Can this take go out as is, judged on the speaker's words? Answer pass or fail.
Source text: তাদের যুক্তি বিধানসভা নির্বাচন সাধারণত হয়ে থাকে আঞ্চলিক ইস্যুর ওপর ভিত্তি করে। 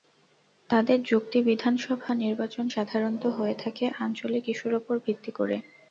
pass